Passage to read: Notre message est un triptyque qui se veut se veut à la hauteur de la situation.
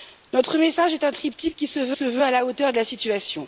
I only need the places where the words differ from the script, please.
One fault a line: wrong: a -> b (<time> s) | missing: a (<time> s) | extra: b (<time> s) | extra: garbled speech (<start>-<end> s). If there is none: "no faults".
no faults